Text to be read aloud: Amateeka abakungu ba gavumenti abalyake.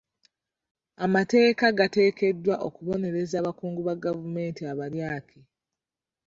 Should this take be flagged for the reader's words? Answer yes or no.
yes